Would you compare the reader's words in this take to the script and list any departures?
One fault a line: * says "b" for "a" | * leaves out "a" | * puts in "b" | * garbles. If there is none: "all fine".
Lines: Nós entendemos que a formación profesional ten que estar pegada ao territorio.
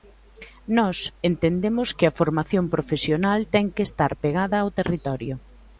all fine